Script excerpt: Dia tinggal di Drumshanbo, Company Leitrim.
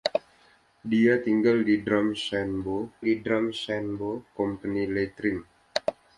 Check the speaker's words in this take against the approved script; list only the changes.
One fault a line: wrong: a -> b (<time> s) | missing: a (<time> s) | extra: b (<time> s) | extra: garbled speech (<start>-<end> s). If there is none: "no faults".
extra: di Drumshanbo (3.0 s)